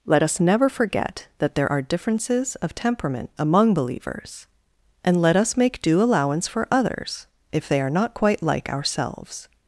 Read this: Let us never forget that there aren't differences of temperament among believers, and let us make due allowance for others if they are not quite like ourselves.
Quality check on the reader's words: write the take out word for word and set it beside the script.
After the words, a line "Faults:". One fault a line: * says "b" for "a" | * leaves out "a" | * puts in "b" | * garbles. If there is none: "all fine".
Let us never forget that there are differences of temperament among believers, and let us make due allowance for others if they are not quite like ourselves.
Faults:
* says "are" for "aren't"